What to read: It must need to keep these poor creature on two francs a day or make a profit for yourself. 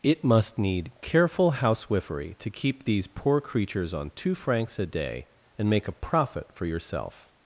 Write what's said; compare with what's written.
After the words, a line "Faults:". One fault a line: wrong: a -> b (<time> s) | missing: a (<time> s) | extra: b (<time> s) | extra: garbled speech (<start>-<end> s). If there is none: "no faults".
It must need careful housewifery to keep these poor creatures on two francs a day and make a profit for yourself.
Faults:
extra: careful housewifery (1.0 s)
wrong: creature -> creatures (3.4 s)
wrong: or -> and (5.6 s)